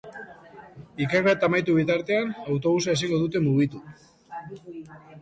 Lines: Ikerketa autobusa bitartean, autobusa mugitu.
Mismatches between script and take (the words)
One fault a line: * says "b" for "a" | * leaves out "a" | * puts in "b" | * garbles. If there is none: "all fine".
* says "amaitu" for "autobusa"
* puts in "ezingo dute"